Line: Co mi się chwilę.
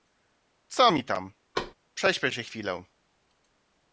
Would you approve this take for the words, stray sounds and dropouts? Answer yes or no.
no